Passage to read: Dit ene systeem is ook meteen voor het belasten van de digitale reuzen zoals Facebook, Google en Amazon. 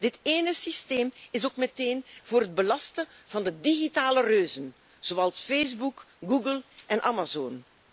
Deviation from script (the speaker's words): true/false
false